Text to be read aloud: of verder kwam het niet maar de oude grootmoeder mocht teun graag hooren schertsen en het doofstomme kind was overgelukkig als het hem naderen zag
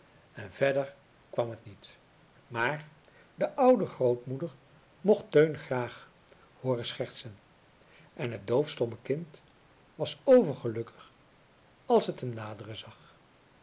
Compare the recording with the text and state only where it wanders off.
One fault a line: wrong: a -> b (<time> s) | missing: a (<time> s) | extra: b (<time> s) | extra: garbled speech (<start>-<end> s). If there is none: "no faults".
wrong: of -> en (0.3 s)